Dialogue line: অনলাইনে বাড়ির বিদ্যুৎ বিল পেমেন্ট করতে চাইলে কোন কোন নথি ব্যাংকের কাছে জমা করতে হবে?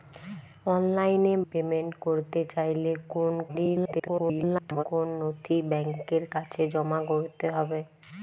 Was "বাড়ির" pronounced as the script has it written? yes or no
no